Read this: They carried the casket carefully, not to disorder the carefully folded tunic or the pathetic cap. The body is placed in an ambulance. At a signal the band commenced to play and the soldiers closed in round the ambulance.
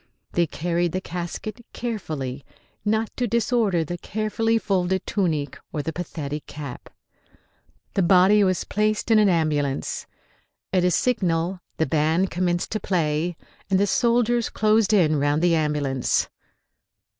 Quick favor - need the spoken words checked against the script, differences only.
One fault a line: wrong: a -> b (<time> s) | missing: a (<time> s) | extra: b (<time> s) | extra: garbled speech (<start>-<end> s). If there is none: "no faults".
wrong: is -> was (8.4 s)